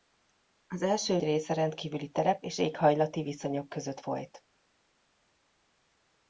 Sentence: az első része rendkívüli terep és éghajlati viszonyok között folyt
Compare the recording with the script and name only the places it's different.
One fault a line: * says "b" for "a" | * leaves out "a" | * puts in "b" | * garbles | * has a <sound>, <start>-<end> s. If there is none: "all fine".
all fine